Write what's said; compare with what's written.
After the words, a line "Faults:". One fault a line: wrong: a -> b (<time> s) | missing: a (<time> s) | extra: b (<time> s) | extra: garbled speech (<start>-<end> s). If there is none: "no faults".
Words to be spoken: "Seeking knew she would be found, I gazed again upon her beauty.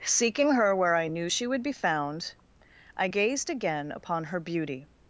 "Seeking her where I knew she would be found, I gazed again upon her beauty.
Faults:
extra: her where I (0.5 s)